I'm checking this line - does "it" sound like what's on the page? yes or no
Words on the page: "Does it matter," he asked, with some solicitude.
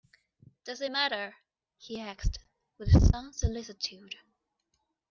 yes